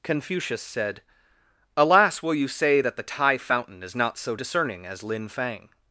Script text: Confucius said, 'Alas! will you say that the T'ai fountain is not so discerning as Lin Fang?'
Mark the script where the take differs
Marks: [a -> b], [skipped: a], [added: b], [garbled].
Confucius said, 'Alas! will you say that the T'ai fountain is not so discerning as Lin Fang?'